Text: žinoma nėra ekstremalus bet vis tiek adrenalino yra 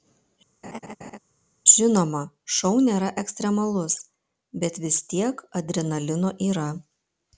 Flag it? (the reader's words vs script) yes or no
yes